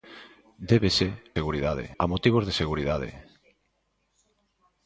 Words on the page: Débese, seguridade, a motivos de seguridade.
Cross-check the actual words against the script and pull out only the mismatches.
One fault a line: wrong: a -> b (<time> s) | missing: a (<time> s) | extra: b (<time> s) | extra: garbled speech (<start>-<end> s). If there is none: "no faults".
no faults